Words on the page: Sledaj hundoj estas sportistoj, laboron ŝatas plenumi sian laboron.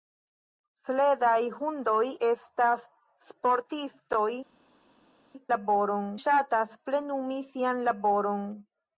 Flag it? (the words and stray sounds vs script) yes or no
no